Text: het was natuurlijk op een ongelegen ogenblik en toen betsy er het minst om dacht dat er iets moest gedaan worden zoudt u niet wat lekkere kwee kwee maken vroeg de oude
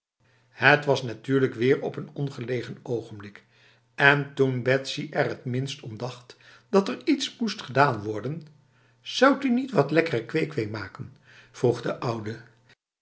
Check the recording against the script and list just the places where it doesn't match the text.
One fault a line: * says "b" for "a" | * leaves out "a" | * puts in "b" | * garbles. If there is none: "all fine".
* puts in "weer"